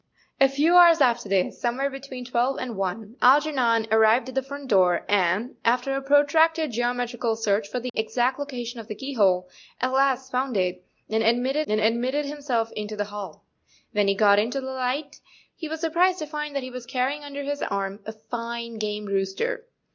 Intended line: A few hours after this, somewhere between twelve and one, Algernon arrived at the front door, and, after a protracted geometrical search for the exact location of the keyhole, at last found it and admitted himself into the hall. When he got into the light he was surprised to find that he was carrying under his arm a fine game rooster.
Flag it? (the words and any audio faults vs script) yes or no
yes